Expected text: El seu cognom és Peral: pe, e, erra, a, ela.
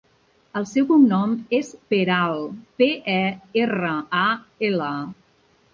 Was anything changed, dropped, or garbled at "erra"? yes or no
no